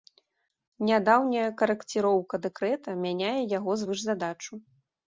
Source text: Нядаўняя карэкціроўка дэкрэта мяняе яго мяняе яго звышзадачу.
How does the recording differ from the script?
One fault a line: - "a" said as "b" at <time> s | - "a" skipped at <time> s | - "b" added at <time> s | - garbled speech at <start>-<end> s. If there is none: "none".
- "мяняе яго" skipped at 3.8 s